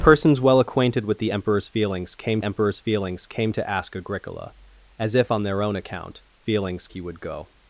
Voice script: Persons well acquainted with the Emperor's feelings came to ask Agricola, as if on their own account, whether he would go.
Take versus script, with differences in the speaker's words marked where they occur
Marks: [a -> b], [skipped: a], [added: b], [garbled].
Persons well acquainted with the Emperor's feelings came [added: Emperor's feelings came] to ask Agricola, as if on their own account, [whether -> feelings] he would go.